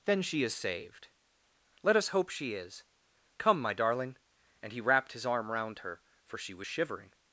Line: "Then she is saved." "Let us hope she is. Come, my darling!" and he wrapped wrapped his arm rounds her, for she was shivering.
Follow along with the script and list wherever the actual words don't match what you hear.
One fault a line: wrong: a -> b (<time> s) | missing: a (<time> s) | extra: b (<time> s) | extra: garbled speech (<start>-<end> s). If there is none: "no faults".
missing: wrapped (5.1 s)
wrong: rounds -> round (5.5 s)